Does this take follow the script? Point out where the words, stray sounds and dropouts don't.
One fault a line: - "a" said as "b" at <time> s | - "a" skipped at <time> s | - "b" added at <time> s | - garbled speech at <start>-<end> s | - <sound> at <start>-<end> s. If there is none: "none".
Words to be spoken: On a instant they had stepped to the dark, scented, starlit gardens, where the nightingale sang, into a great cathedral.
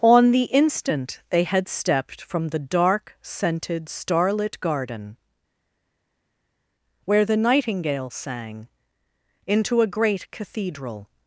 - "a" said as "the" at 0.3 s
- "to" said as "from" at 2.2 s
- "gardens" said as "garden" at 4.6 s